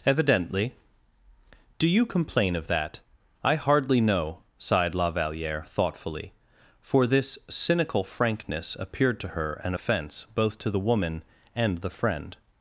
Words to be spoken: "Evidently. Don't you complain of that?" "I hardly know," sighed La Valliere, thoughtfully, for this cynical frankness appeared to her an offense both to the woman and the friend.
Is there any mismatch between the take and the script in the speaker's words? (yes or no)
yes